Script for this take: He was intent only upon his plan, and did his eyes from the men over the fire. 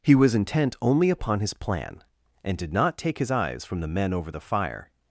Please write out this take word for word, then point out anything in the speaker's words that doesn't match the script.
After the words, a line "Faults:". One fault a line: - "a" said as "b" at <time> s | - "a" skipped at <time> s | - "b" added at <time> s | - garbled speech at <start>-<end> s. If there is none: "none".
He was intent only upon his plan, and did not take his eyes from the men over the fire.
Faults:
- "not take" added at 2.7 s